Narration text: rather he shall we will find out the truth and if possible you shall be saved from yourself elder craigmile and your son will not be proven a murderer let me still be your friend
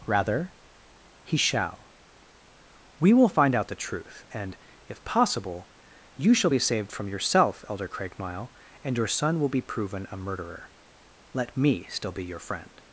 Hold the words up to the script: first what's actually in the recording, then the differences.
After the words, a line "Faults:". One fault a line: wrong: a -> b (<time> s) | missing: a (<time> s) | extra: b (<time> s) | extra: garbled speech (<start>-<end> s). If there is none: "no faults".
rather he shall we will find out the truth and if possible you shall be saved from yourself elder craigmile and your son will be proven a murderer let me still be your friend
Faults:
missing: not (9.5 s)